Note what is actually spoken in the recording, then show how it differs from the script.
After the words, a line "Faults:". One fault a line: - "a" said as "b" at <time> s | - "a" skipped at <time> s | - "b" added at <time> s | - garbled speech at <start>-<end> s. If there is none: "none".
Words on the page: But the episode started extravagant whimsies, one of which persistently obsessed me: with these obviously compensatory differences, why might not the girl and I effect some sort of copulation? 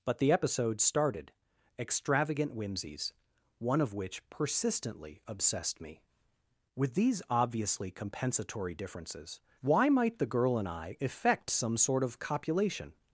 But the episode started extravagant whimsies, one of which persistently obsessed me: with these obviously compensatory differences, why might the girl and I effect some sort of copulation?
Faults:
- "not" skipped at 10.2 s